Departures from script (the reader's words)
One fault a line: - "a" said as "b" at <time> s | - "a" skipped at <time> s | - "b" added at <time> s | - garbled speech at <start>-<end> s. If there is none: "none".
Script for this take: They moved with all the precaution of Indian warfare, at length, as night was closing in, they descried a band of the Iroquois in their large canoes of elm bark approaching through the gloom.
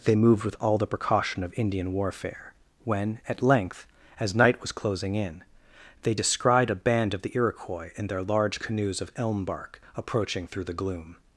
- "when" added at 2.8 s